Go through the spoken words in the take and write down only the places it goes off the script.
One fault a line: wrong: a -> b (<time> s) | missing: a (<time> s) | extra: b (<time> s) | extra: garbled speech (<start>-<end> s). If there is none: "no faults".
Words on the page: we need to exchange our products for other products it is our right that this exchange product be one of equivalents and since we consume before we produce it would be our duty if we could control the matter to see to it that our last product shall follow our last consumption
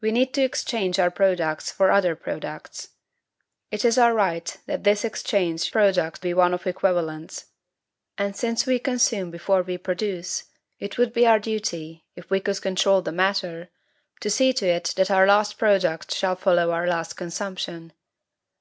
no faults